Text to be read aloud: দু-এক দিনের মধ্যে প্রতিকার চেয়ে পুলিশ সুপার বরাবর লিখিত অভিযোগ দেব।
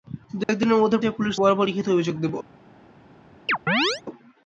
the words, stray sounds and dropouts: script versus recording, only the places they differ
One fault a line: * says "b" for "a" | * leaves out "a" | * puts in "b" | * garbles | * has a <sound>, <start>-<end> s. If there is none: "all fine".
* has a dropout, 0.4-0.5 s
* leaves out "প্রতিকার"
* leaves out "সুপার"
* has a chirp, 3.5-4.0 s